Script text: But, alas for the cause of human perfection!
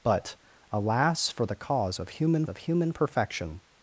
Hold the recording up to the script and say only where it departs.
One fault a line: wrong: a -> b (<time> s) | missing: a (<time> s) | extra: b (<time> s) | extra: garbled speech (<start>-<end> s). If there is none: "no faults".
extra: of human (2.5 s)